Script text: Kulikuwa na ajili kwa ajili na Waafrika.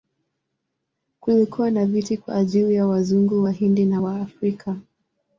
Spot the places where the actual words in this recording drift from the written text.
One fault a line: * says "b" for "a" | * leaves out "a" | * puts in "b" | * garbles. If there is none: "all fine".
* says "viti" for "ajili"
* puts in "ya Wazungu Wahindi"